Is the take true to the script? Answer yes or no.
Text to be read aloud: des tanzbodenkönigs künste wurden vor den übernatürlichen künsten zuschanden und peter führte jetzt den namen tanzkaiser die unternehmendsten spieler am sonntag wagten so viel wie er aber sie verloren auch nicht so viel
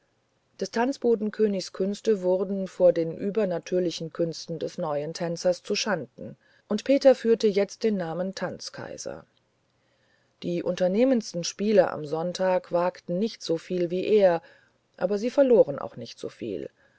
no